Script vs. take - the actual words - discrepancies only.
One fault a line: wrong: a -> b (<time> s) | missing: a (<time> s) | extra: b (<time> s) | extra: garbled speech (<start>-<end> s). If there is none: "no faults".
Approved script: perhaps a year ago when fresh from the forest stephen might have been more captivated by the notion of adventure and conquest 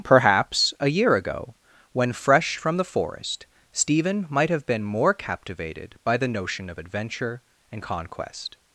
no faults